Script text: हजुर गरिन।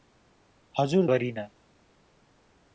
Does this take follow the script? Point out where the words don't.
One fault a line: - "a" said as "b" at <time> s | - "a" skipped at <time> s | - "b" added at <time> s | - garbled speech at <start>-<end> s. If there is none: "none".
none